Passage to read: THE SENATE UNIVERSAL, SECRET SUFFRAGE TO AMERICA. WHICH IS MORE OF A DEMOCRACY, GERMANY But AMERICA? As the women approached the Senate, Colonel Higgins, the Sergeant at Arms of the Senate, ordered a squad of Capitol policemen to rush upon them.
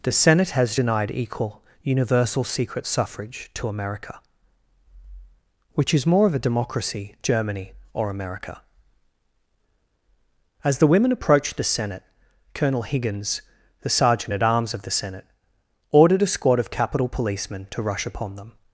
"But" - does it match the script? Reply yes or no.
no